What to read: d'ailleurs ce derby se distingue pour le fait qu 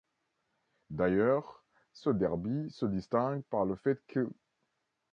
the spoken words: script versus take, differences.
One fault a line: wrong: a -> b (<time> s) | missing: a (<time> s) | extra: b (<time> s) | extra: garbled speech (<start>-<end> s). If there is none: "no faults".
wrong: pour -> par (3.4 s)